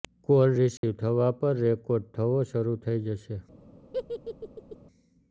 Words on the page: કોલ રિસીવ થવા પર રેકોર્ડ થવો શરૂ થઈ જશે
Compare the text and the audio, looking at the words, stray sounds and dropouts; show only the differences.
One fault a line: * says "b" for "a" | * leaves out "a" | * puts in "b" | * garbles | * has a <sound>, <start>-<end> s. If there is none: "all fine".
* has a dropout, 0.8-0.8 s
* has a laugh, 3.9-4.8 s